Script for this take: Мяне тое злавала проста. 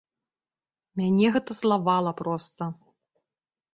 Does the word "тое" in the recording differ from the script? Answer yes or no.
yes